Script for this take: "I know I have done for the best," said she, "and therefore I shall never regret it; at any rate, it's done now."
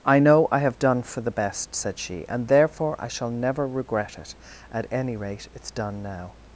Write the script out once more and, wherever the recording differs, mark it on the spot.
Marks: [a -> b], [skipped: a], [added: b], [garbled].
"I know I have done for the best," said she, "and therefore I shall never regret it; at any rate, it's done now."